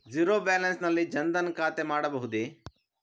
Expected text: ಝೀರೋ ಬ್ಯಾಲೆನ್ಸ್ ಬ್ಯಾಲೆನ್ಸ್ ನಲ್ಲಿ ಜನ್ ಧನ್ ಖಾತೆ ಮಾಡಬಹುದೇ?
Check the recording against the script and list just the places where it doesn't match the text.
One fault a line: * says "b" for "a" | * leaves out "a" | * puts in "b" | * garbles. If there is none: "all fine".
* leaves out "ಬ್ಯಾಲೆನ್ಸ್"